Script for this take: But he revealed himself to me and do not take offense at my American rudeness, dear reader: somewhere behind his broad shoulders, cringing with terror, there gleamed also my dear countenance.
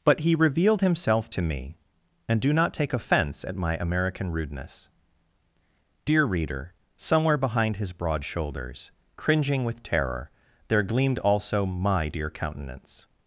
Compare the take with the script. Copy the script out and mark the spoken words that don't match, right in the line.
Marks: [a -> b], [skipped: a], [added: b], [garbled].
But he revealed himself to me and do not take offense at my American rudeness, dear reader: somewhere behind his broad shoulders, cringing with terror, there gleamed also my dear countenance.